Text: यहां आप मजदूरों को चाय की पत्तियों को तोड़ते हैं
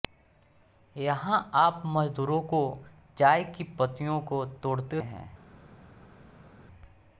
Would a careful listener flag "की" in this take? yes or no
no